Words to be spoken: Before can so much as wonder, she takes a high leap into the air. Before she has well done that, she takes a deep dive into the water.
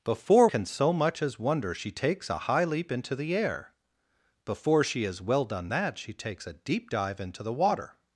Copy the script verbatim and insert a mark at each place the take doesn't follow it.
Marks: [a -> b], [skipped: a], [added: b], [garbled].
Before can so much as wonder, she takes a high leap into the air. Before she has well done that, she takes a deep dive into the water.